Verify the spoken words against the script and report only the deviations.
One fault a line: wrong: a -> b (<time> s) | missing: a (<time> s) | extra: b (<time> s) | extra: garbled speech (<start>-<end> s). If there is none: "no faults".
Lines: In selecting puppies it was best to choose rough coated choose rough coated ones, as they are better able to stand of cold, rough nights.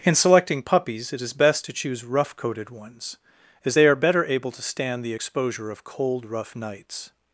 wrong: was -> is (1.2 s)
missing: choose rough coated (2.7 s)
extra: the exposure (5.0 s)